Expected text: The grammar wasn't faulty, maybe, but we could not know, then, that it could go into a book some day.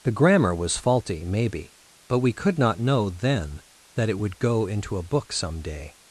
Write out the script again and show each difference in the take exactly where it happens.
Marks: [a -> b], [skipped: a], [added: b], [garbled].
The grammar [wasn't -> was] faulty, maybe, but we could not know, then, that it [could -> would] go into a book some day.